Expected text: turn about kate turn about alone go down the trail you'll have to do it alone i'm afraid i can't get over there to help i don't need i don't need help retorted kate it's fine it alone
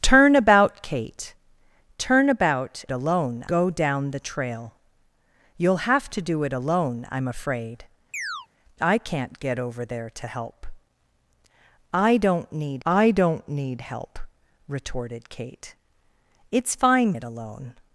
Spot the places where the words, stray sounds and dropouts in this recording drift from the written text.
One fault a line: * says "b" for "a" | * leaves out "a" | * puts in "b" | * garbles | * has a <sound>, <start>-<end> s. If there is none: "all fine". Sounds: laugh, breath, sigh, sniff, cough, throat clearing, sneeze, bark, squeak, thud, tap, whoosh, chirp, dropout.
* has a chirp, 8.1-8.5 s